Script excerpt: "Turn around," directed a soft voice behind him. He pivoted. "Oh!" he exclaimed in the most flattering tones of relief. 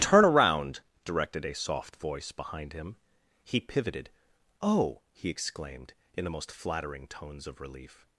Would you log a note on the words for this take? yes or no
no